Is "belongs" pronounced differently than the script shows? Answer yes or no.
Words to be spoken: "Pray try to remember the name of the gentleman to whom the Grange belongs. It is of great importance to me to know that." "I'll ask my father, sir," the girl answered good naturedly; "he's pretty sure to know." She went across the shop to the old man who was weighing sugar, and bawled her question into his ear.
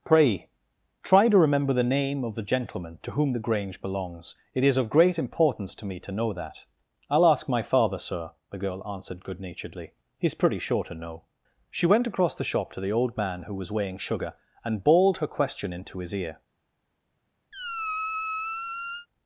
no